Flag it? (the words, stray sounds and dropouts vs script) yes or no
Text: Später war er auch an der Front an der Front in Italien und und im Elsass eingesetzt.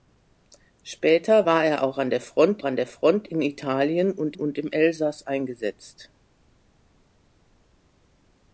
no